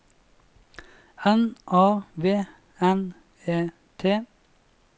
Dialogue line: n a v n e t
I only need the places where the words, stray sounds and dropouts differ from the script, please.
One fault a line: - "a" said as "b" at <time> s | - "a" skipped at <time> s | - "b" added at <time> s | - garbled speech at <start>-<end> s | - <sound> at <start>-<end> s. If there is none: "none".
none